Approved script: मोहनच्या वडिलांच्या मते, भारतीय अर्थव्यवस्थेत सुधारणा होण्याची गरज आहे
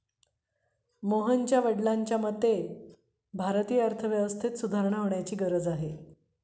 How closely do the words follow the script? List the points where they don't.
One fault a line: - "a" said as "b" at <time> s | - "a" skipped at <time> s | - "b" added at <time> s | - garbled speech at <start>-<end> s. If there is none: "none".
none